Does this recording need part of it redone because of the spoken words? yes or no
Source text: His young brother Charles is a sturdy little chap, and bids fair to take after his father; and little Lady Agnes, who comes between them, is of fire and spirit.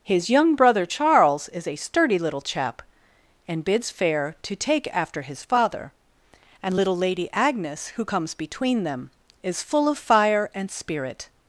yes